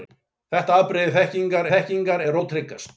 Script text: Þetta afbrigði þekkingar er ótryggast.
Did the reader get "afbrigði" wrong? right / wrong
right